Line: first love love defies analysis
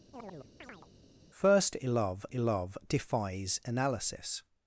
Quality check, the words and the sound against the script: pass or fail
fail